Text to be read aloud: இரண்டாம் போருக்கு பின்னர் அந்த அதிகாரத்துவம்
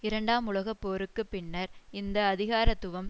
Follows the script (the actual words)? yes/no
no